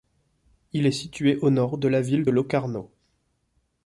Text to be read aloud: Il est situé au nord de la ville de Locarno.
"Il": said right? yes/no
yes